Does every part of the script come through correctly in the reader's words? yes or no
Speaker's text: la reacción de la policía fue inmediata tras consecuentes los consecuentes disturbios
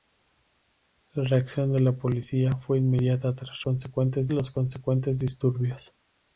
yes